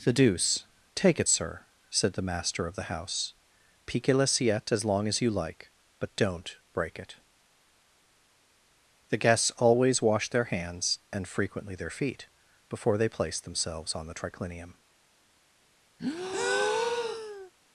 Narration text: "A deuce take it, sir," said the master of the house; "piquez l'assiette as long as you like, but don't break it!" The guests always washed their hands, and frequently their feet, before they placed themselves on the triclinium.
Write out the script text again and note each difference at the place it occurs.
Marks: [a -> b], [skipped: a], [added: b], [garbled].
["A -> The] deuce take it, sir," said the master of the house; "piquez l'assiette as long as you like, but don't break it!" The guests always washed their hands, and frequently their feet, before they placed themselves on the triclinium.